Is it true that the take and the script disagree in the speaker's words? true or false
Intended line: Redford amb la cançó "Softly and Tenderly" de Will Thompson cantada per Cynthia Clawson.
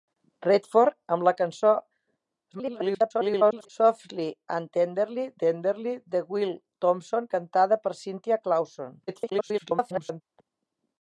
true